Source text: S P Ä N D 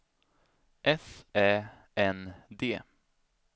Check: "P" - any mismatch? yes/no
yes